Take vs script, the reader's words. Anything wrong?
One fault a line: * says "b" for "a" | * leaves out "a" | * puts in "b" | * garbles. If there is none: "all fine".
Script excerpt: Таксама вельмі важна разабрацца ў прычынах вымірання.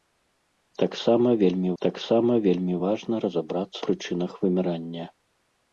* puts in "таксама вельмі"
* leaves out "ў"